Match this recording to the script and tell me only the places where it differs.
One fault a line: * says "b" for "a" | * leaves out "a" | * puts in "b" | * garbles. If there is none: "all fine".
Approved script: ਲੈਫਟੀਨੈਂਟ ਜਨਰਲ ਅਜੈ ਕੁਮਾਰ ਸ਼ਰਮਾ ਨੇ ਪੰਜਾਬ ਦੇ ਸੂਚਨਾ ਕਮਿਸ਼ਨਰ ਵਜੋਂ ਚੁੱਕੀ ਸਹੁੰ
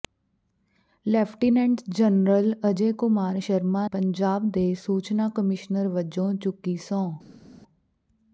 * leaves out "ਨੇ"